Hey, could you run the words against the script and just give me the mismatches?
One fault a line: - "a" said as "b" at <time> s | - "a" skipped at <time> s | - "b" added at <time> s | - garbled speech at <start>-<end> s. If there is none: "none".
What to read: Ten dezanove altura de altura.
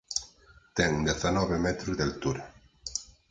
- "altura" said as "metros" at 1.7 s